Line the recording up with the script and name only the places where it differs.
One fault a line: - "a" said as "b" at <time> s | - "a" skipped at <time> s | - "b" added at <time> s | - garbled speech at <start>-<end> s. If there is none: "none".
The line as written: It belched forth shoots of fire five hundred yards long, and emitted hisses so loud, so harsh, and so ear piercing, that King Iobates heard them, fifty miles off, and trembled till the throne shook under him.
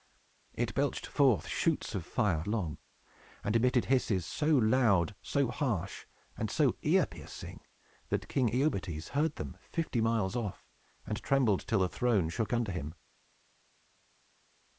- "five hundred yards" skipped at 2.4 s